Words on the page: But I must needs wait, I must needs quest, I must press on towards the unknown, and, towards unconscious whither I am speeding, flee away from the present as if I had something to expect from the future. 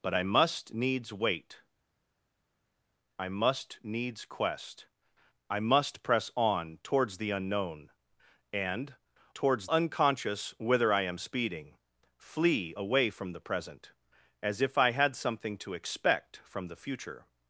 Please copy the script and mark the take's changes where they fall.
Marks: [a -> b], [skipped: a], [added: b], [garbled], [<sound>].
But I must needs wait, I must needs quest, I must press on towards the unknown, and, towards unconscious whither I am speeding, flee away from the present as if I had something to expect from the future.